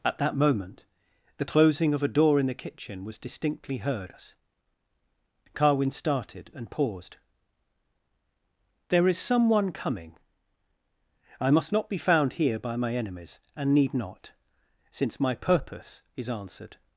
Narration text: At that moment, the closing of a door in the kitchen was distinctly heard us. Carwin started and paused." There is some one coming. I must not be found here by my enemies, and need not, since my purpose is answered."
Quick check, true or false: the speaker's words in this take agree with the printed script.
true